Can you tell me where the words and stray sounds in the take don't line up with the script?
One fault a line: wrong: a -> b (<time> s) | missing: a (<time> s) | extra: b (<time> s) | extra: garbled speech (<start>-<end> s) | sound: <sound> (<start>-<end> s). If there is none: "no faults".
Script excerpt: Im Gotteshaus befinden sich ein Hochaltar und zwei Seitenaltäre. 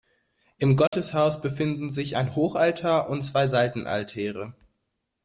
sound: dropout (0.9-0.9 s)